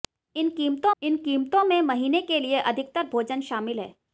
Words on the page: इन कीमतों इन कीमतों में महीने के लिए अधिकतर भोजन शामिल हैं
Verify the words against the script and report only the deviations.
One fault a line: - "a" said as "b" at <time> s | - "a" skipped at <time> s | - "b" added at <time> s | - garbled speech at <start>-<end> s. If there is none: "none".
none